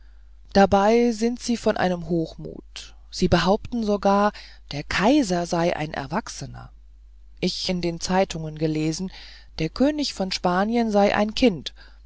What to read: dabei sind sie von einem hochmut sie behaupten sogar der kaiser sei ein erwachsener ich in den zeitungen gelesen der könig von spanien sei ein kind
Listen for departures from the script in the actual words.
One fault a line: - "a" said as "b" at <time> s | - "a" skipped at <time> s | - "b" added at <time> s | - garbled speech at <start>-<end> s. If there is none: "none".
none